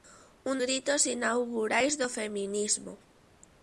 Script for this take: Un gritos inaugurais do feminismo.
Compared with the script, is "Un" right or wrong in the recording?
right